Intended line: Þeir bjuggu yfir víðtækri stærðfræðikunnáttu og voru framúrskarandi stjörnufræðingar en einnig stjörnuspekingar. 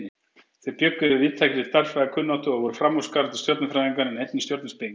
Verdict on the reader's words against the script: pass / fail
pass